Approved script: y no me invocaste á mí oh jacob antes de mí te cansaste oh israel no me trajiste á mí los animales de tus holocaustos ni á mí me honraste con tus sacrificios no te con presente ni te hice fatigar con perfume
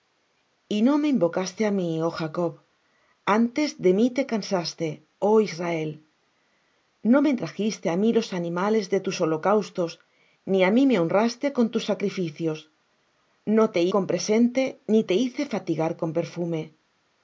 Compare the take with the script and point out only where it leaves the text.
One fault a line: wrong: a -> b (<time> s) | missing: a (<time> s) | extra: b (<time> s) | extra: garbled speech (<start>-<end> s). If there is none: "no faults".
no faults